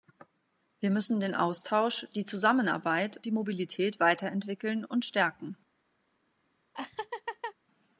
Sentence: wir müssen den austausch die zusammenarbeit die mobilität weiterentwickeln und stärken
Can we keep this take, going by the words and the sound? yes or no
no